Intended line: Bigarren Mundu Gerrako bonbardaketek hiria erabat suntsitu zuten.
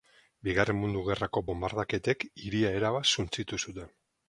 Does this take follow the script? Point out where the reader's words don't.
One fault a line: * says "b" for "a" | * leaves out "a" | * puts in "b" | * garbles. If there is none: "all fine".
all fine